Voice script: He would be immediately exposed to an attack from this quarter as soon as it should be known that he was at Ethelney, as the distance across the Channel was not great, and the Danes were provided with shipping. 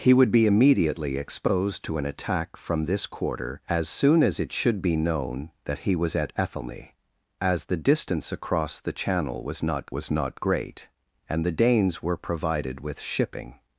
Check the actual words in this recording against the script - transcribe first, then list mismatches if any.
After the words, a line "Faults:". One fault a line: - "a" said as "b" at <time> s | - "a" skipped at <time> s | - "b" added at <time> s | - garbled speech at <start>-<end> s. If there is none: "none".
He would be immediately exposed to an attack from this quarter as soon as it should be known that he was at Ethelney, as the distance across the Channel was not was not great, and the Danes were provided with shipping.
Faults:
- "was not" added at 9.9 s